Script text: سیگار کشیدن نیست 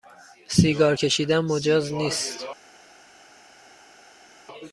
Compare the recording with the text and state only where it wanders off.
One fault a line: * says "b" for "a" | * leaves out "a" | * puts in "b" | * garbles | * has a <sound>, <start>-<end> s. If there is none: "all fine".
* puts in "مجاز"